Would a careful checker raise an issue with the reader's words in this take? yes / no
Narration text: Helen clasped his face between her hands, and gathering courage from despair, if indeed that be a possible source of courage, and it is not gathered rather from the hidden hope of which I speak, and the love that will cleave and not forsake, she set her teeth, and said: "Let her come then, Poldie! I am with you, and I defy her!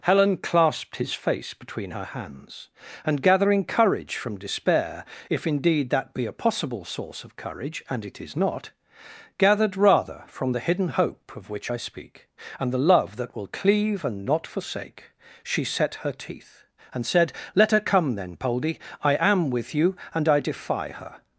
no